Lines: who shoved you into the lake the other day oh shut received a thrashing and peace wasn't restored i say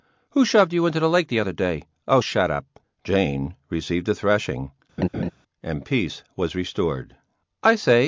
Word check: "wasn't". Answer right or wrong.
wrong